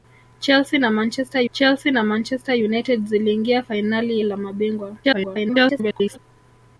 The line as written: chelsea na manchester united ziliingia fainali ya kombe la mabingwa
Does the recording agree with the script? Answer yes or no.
no